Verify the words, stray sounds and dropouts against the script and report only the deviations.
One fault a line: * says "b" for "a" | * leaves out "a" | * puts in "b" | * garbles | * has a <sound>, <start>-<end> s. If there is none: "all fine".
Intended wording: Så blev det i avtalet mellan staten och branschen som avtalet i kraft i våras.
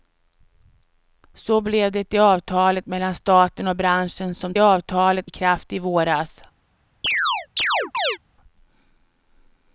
* has a chirp, 7.0-8.2 s